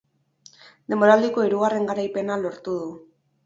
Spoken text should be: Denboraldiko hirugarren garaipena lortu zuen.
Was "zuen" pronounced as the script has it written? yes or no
no